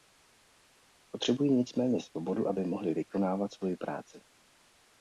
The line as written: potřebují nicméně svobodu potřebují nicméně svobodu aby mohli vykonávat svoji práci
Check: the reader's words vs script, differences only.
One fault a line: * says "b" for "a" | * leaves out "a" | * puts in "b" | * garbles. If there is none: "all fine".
* leaves out "potřebují nicméně svobodu"